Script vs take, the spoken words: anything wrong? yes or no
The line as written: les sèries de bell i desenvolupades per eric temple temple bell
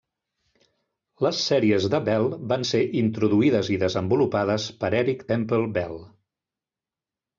yes